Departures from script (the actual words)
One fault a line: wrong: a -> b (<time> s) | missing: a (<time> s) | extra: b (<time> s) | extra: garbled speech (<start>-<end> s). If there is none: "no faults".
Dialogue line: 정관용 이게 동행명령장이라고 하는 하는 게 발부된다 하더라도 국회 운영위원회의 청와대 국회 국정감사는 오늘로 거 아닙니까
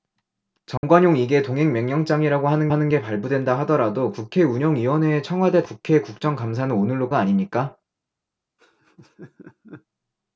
no faults